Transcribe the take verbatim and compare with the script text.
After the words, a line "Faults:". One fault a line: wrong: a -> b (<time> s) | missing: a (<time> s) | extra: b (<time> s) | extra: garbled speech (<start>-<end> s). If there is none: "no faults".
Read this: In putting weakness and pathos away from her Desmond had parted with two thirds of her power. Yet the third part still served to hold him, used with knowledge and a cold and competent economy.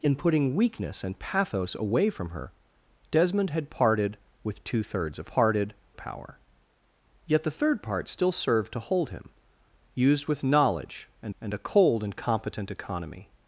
In putting weakness and pathos away from her Desmond had parted with two thirds of parted power. Yet the third part still served to hold him, used with knowledge and and a cold and competent economy.
Faults:
wrong: her -> parted (5.3 s)
extra: and (11.4 s)